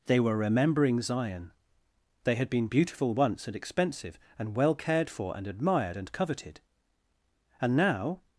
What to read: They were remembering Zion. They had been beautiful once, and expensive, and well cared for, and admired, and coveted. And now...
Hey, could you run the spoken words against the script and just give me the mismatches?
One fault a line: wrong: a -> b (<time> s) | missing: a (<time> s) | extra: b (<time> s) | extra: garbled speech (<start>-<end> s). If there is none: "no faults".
no faults